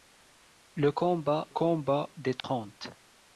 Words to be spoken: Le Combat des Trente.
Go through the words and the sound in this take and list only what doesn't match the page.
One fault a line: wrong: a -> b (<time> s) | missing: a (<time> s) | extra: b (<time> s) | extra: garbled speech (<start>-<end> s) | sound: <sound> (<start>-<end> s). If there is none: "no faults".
extra: Combat (1.5 s)
sound: dropout (2.4-2.4 s)